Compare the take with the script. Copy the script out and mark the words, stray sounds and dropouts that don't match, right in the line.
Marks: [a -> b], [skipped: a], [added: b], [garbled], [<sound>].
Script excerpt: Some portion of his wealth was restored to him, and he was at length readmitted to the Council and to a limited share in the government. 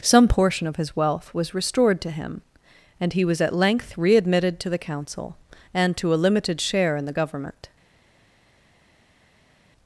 Some portion of his wealth was restored to him, and he was at length readmitted to the Council and to a limited share in the government.